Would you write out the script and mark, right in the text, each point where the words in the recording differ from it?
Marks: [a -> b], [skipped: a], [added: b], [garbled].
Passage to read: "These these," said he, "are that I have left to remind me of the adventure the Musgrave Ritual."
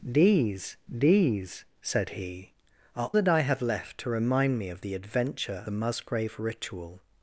"These these," said he, "are that I have left to remind me of the adventure the Musgrave Ritual."